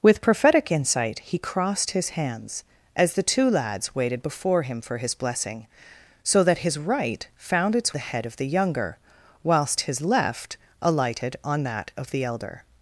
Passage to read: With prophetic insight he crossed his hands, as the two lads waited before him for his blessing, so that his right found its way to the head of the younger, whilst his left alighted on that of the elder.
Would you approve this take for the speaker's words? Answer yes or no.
no